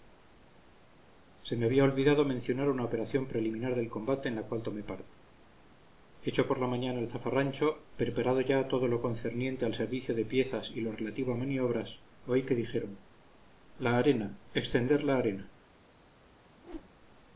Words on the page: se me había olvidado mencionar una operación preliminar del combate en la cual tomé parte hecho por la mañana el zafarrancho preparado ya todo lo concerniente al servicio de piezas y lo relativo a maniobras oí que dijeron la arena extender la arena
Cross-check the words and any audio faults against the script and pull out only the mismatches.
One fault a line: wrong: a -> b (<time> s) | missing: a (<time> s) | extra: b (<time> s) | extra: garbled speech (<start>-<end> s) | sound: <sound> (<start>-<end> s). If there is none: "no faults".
sound: whoosh (16.6-16.9 s)